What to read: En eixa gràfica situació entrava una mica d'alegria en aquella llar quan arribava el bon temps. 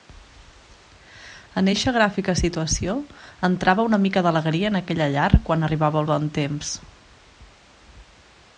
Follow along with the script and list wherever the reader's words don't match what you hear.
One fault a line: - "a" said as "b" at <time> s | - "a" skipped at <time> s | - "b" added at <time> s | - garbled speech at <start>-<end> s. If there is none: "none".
none